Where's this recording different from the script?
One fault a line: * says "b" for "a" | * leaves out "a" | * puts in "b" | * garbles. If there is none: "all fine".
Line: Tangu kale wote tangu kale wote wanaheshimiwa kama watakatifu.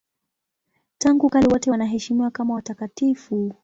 * leaves out "tangu kale wote"